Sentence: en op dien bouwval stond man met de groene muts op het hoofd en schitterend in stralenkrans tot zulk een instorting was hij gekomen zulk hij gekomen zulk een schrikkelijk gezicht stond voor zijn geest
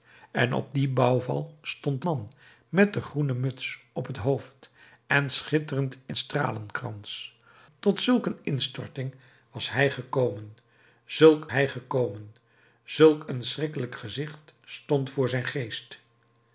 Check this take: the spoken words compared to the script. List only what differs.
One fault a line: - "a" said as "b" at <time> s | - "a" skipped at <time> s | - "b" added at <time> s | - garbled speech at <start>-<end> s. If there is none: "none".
none